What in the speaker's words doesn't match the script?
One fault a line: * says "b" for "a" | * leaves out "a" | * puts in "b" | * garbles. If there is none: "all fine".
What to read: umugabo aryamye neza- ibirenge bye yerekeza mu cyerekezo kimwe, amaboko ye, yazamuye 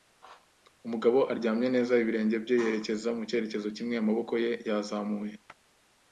all fine